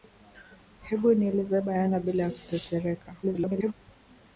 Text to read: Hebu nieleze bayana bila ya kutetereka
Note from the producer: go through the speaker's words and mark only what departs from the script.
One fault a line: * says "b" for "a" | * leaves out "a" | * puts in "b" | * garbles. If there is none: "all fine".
* garbles